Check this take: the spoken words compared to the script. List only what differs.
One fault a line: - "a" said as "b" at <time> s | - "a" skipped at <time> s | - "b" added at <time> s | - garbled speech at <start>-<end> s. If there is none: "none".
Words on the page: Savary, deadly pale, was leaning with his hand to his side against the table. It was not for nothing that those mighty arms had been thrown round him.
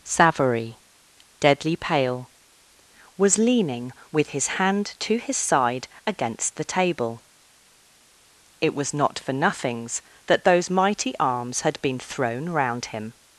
- "nothing" said as "nothings" at 9.3 s